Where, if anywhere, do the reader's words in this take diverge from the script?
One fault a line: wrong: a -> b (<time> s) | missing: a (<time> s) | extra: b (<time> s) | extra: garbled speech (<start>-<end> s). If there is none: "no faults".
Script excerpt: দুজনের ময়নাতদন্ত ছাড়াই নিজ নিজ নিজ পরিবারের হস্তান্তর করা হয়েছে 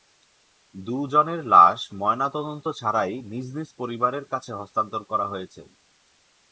extra: লাশ (1.4 s)
wrong: নিজ পরিবারের -> পরিবারের কাছে (3.8 s)